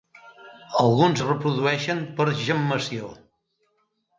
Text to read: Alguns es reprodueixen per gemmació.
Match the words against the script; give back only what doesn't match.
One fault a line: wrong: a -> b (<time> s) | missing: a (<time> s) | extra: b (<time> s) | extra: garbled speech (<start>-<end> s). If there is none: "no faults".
no faults